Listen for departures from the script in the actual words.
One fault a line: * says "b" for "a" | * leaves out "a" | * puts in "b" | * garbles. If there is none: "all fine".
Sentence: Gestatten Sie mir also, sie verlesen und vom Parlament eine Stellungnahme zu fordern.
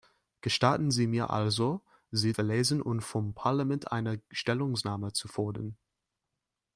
all fine